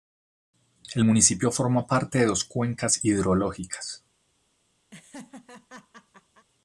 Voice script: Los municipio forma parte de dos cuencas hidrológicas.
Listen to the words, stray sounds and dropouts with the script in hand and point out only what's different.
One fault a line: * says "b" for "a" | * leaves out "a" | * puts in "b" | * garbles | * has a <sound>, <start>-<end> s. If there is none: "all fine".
* says "El" for "Los"
* has a laugh, 4.9-6.5 s